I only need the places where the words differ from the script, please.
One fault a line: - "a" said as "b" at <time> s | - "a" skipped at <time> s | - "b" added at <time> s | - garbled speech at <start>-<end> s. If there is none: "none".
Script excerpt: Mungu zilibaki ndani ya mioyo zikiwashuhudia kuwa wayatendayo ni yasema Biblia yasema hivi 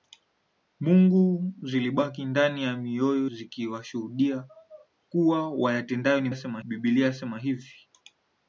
none